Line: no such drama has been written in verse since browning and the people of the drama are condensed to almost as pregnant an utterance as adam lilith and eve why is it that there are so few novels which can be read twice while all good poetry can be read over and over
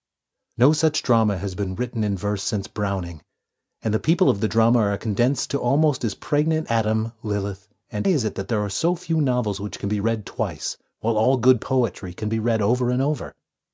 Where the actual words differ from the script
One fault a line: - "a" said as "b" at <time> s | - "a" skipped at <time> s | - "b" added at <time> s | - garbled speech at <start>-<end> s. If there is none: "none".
- "an utterance as" skipped at 6.7 s
- "eve why" skipped at 8.1 s